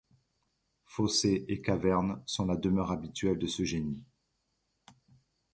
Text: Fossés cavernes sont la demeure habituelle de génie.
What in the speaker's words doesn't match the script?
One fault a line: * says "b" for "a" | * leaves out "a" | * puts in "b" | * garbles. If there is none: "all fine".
* puts in "et"
* puts in "ce"